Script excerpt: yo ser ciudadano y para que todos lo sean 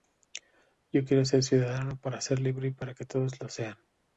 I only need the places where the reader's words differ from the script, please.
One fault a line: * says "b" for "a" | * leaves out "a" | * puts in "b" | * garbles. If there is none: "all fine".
* puts in "quiero"
* puts in "para ser libre"